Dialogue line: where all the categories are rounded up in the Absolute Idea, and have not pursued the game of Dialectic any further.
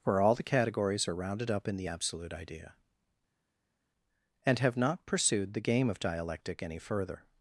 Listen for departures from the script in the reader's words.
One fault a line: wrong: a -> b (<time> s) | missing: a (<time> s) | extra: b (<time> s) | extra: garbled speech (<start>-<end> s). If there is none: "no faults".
no faults